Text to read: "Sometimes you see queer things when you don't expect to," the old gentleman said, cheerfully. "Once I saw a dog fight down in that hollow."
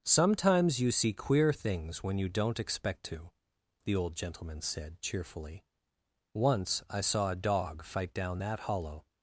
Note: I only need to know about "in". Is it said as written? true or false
false